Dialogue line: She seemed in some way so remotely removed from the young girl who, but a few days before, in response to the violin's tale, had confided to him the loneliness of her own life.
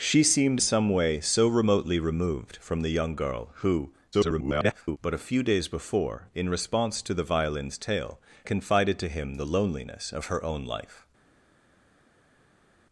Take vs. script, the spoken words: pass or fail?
fail